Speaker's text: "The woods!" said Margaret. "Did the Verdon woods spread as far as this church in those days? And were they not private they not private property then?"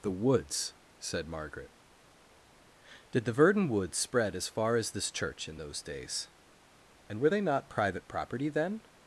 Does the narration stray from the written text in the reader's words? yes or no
yes